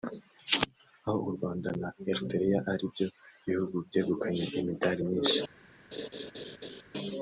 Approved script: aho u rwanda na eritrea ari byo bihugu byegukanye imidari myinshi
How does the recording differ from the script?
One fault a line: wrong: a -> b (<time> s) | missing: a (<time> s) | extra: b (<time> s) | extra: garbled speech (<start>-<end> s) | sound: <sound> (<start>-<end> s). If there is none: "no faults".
sound: laugh (5.9-6.8 s)